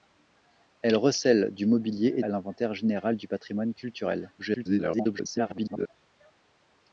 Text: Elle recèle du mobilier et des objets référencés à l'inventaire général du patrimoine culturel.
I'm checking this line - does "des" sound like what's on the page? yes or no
no